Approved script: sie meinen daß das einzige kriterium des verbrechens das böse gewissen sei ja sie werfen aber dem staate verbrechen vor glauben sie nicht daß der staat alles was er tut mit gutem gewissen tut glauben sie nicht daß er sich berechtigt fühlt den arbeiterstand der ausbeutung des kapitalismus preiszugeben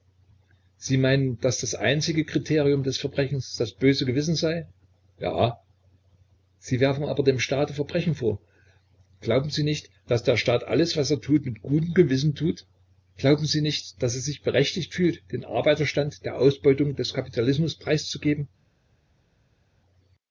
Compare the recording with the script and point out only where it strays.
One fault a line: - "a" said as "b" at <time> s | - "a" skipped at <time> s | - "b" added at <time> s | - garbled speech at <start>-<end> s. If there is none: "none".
none